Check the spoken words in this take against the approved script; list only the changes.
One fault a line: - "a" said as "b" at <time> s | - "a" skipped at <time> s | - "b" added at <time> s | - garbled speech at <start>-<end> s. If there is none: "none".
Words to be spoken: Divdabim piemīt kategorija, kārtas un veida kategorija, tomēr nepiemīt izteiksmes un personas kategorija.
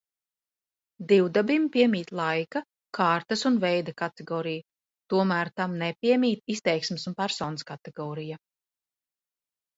- "kategorija" said as "laika" at 2.2 s
- "tam" added at 5.6 s